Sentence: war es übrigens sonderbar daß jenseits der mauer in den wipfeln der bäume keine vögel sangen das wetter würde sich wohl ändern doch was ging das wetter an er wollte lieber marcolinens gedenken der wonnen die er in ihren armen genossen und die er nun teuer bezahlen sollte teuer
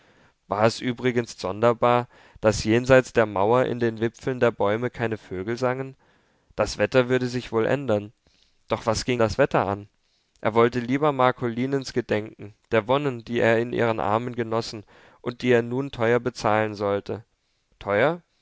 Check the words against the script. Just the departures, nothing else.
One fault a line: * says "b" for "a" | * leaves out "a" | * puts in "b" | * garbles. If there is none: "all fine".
all fine